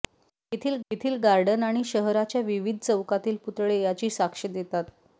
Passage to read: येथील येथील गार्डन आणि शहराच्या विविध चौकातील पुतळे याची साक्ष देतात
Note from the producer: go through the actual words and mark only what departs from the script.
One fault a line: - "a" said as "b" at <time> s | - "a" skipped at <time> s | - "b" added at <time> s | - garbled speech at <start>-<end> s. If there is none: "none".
none